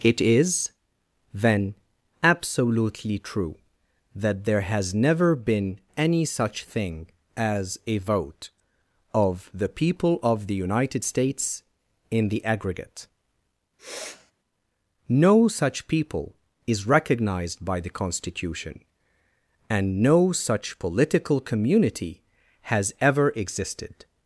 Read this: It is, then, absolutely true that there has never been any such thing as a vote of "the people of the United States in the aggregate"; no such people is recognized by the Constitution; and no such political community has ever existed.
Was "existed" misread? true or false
false